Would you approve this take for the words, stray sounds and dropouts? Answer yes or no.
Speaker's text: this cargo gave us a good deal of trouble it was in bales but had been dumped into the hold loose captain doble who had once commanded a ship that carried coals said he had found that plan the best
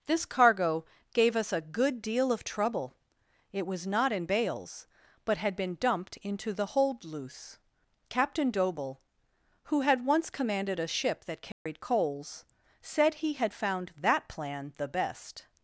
no